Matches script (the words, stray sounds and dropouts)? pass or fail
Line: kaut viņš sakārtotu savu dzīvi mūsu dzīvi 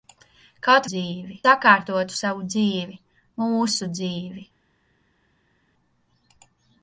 fail